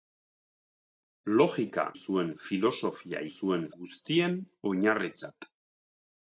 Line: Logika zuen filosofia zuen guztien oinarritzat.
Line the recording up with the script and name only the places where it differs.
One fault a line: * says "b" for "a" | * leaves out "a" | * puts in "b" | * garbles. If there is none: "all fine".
all fine